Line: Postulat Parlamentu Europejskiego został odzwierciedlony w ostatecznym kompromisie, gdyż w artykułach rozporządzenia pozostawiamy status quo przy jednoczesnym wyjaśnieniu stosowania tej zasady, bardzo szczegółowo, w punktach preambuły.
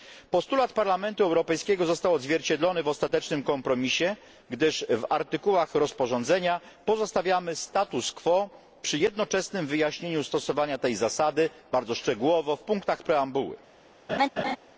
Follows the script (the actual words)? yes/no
yes